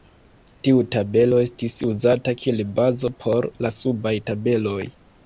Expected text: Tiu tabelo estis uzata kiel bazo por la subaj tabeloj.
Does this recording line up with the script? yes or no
yes